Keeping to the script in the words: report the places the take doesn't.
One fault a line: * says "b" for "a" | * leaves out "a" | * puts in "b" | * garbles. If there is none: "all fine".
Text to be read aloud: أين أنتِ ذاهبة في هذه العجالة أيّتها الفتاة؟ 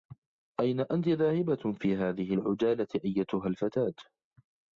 all fine